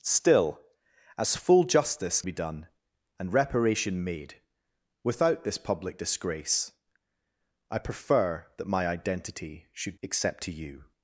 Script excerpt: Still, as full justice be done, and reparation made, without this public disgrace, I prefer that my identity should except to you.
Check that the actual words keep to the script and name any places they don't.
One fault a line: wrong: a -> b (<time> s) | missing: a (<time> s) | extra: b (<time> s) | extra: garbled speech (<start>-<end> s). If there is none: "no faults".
no faults